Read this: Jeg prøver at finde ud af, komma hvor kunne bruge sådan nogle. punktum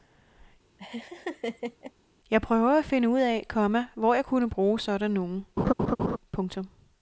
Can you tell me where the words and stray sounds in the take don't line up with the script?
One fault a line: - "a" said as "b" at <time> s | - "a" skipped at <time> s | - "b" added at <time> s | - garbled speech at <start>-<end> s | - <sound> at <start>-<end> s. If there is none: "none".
- laugh at 0.8-1.9 s
- "jeg" added at 4.1 s
- laugh at 5.6-6.2 s